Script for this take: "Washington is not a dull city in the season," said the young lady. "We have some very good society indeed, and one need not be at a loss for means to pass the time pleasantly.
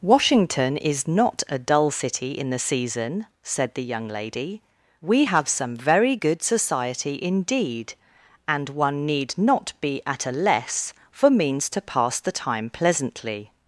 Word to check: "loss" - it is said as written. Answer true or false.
false